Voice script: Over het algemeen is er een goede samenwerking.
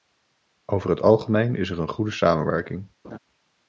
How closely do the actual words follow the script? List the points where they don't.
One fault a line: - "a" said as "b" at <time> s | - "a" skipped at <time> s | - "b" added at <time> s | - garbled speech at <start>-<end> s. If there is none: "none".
none